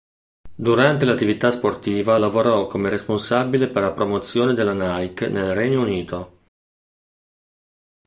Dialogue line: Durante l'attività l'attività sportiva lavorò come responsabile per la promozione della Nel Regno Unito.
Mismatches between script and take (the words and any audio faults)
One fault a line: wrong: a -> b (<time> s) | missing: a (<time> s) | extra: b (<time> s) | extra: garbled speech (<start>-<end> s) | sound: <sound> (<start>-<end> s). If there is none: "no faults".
missing: l'attività (1.5 s)
extra: Nike (4.7 s)